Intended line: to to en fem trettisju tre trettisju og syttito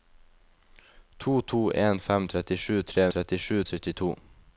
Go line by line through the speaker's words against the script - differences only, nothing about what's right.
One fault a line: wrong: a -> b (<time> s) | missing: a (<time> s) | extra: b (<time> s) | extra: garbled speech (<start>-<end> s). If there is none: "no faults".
no faults